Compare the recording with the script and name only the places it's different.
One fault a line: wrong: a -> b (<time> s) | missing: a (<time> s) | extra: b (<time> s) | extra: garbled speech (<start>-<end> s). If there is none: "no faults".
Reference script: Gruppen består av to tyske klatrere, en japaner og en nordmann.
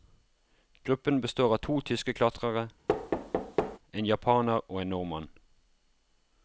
no faults